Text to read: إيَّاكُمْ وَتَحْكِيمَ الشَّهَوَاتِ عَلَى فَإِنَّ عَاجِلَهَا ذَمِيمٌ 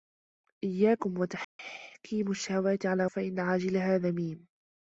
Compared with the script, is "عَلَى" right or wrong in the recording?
right